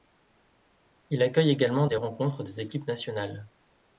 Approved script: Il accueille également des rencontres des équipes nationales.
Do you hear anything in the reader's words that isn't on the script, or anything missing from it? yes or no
no